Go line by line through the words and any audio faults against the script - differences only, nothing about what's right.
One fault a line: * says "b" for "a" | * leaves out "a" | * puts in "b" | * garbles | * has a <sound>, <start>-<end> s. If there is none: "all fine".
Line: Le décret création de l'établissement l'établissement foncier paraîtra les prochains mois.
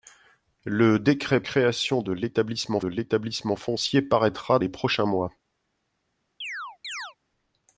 * has a chirp, 6.4-7.2 s